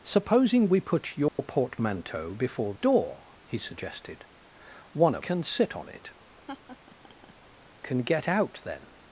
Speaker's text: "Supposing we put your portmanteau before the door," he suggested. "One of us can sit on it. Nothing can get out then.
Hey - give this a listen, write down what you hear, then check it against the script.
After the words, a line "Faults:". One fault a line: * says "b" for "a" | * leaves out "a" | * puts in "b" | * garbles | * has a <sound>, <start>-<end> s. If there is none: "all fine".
"Supposing we put your portmanteau before door," he suggested. "One of can sit on it. Can get out then.
Faults:
* has a dropout, 1.3-1.4 s
* leaves out "the"
* leaves out "us"
* leaves out "Nothing"
* has a laugh, 6.5-7.3 s